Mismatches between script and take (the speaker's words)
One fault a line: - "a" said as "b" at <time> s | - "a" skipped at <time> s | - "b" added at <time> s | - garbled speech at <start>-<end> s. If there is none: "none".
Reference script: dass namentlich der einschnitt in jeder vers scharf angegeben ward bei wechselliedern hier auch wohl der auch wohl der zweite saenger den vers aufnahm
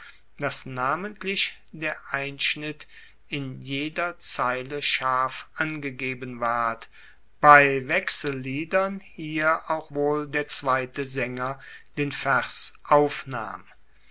- "vers" said as "zeile" at 4.2 s
- "auch wohl der" skipped at 10.5 s